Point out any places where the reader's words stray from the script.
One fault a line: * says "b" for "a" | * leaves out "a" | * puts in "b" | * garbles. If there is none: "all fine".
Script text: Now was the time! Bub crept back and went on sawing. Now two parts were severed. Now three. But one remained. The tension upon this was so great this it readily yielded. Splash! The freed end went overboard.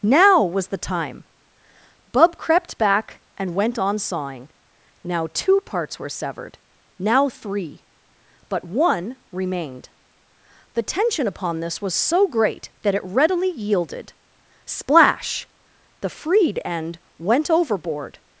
* says "that" for "this"